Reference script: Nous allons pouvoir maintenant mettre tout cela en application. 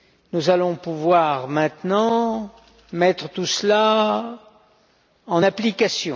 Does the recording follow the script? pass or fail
pass